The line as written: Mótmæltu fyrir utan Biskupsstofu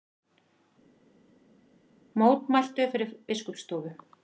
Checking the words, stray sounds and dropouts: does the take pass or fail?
fail